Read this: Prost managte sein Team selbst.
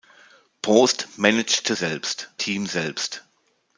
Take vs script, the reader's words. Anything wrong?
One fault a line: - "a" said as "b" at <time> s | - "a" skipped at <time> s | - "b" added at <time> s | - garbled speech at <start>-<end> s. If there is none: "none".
- "sein" said as "selbst" at 1.7 s